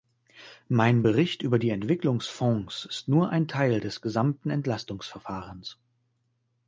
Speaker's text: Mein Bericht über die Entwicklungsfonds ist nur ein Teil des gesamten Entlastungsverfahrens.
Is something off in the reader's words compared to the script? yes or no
no